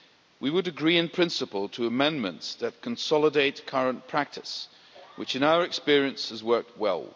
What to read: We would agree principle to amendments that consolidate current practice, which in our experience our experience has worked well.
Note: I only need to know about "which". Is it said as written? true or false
true